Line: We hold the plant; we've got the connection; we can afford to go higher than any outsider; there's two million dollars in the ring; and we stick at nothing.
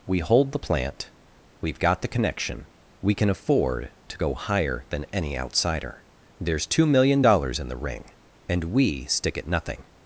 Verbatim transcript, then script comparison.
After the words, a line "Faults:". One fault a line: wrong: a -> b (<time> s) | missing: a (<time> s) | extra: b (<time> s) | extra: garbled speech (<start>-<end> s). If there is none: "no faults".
We hold the plant; we've got the connection; we can afford to go higher than any outsider; there's two million dollars in the ring; and we stick at nothing.
Faults:
no faults